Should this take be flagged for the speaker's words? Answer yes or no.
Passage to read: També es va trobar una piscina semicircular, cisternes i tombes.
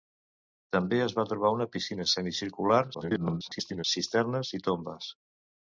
yes